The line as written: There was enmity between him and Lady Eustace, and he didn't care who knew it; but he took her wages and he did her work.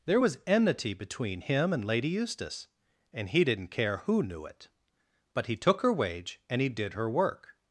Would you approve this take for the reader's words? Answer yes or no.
no